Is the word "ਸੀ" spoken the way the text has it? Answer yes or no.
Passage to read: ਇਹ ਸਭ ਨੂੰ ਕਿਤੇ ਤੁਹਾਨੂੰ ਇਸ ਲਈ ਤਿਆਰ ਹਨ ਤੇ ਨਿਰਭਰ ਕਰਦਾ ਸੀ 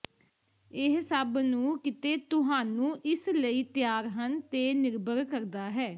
no